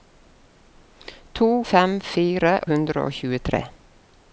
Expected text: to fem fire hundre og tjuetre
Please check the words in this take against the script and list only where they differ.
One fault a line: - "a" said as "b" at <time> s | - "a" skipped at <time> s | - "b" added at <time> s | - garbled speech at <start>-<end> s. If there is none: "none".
none